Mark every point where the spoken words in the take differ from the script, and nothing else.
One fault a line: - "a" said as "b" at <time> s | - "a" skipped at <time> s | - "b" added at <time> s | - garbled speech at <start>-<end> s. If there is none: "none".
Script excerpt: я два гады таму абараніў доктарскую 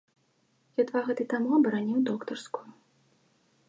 none